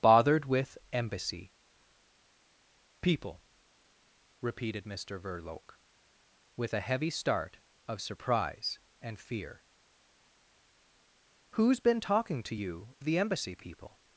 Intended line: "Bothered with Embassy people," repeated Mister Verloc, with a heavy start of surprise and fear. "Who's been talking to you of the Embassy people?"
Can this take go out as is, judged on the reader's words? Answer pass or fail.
fail